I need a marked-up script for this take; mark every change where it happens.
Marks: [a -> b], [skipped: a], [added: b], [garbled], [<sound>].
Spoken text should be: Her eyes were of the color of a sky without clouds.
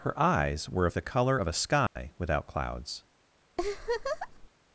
Her eyes were of the color of a sky [dropout] without clouds. [laugh]